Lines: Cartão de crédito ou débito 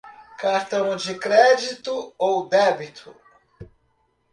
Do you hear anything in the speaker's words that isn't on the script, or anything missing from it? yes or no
no